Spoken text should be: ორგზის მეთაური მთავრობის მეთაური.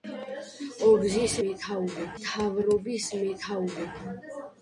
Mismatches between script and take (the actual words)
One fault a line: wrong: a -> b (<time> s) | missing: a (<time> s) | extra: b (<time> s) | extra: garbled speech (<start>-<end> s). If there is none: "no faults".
no faults